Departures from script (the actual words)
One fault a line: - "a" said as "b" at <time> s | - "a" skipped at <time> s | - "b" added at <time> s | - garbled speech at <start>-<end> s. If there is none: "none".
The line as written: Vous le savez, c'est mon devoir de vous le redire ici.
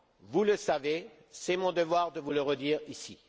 none